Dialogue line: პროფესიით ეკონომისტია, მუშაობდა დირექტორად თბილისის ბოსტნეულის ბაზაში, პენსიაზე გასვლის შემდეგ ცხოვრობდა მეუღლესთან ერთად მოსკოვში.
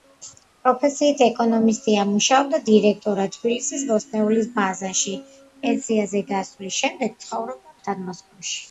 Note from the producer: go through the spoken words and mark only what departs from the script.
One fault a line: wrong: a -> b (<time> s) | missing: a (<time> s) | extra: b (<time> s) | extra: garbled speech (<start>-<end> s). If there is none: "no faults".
missing: მეუღლესთან (7.8 s)